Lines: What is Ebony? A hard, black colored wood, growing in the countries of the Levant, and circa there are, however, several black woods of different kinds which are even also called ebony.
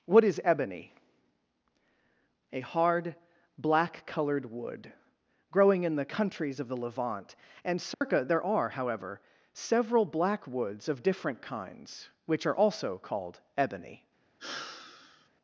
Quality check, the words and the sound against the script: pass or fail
fail